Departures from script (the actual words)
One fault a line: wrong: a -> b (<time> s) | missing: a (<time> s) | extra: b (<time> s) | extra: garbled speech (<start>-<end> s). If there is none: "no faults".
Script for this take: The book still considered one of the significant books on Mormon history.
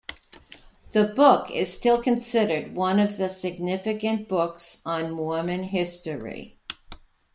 extra: is (1.5 s)